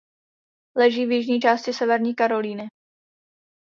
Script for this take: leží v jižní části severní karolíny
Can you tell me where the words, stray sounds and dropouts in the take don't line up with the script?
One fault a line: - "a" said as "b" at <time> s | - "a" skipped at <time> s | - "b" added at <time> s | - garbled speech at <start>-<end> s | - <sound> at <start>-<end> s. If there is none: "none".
none